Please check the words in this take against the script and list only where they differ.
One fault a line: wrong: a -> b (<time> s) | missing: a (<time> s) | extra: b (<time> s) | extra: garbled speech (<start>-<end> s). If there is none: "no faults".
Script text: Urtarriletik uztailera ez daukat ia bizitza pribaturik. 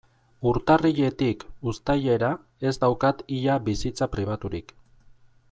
no faults